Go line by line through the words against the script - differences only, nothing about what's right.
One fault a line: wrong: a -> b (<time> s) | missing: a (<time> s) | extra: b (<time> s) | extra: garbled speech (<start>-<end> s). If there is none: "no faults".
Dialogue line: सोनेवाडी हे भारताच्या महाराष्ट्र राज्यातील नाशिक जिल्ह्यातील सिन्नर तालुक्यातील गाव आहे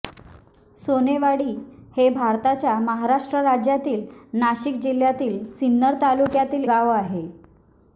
no faults